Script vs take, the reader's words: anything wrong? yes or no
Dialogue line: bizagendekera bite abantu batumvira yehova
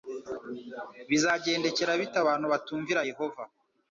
no